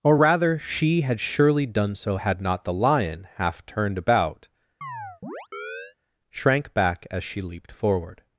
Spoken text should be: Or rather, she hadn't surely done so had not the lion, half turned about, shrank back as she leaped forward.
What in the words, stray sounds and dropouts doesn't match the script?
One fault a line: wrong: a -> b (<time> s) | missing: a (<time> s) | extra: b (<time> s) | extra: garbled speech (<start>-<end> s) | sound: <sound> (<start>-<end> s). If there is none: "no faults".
wrong: hadn't -> had (1.0 s)
sound: chirp (4.8-6.0 s)